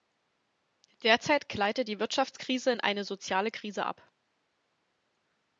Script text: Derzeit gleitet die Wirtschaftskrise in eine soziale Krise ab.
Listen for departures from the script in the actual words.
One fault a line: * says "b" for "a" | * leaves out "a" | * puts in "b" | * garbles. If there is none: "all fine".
all fine